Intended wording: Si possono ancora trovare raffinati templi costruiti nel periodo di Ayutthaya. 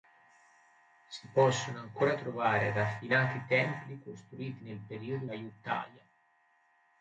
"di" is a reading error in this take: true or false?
true